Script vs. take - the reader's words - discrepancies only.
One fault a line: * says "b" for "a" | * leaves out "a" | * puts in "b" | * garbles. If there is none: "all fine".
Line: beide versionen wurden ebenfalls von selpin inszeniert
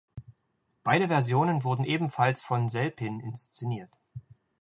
all fine